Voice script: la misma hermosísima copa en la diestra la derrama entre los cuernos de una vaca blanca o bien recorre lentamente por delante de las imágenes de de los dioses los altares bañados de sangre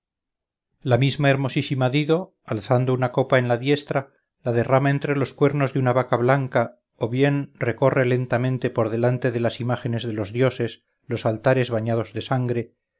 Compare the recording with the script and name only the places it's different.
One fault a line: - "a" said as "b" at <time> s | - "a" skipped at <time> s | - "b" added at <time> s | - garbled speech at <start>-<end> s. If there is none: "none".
- "dido alzando una" added at 1.9 s
- "de" skipped at 10.1 s